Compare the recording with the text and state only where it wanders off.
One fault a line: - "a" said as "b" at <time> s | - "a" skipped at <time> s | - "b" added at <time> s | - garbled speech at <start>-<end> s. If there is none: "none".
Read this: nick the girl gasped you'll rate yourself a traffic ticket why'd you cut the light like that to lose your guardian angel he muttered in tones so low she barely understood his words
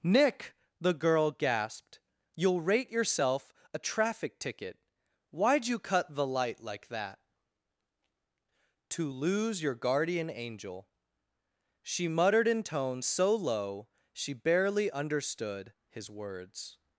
- "he" said as "she" at 11.8 s